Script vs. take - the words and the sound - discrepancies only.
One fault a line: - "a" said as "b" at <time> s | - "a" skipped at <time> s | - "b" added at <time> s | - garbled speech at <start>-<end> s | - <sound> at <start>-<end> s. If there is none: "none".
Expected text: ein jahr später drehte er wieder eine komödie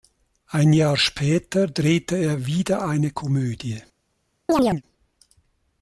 - chirp at 4.5-4.8 s